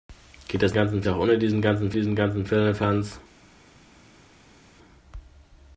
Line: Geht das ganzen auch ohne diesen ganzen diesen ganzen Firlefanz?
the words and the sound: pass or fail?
pass